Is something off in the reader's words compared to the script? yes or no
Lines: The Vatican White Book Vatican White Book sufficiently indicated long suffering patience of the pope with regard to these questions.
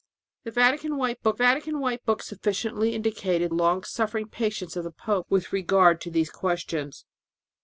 no